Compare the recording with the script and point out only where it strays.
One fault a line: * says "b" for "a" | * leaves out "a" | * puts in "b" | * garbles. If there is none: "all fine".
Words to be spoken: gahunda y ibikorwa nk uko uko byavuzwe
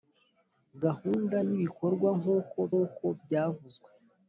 all fine